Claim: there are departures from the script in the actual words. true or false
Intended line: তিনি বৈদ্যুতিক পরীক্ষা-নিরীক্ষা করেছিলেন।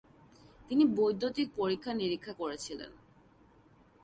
false